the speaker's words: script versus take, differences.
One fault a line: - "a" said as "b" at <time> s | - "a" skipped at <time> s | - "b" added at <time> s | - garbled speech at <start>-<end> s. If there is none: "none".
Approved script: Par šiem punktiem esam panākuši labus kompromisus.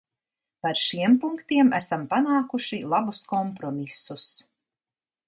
none